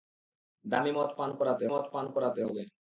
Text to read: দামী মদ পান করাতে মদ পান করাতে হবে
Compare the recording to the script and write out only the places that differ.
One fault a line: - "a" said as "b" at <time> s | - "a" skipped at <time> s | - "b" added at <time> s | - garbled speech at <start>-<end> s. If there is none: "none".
none